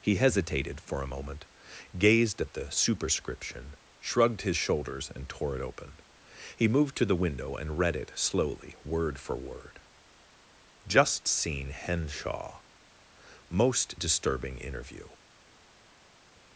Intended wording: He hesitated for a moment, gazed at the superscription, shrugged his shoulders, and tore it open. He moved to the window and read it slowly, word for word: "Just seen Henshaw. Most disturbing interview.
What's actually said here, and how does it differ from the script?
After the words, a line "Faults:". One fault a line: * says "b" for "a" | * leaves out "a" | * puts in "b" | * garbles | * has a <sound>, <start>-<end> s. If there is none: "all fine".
He hesitated for a moment, gazed at the superscription, shrugged his shoulders, and tore it open. He moved to the window and read it slowly, word for word: "Just seen Henshaw. Most disturbing interview.
Faults:
all fine